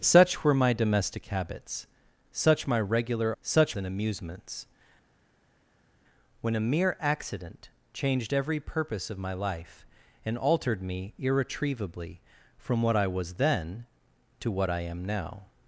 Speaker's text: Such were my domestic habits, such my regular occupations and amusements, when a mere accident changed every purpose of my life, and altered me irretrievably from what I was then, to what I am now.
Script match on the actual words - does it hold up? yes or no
no